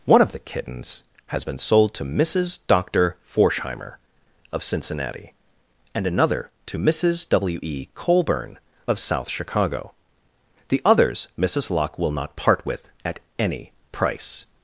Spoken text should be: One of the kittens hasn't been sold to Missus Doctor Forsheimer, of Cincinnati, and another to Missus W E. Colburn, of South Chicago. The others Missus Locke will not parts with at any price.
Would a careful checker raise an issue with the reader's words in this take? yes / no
yes